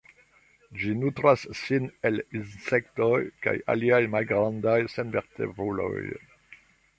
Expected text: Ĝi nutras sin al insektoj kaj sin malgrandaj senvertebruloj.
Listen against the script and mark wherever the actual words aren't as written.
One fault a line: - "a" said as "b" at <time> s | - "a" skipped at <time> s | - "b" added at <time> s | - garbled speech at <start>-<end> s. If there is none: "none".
- "al" said as "el" at 2.1 s
- "sin" said as "aliaj" at 3.7 s